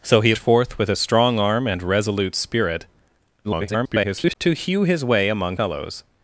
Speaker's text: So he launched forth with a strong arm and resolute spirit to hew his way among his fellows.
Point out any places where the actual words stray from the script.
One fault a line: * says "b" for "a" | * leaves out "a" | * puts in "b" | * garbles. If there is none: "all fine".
* leaves out "launched"
* garbles
* leaves out "his"